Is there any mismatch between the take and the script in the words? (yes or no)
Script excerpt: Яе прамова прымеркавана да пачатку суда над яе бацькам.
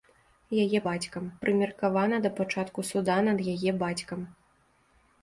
yes